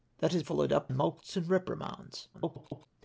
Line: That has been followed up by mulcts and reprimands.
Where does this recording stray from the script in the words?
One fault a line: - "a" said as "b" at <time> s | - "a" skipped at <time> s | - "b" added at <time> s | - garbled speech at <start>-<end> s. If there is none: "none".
- "been" skipped at 0.4 s
- "by" skipped at 0.9 s
- garbled speech at 2.3-2.9 s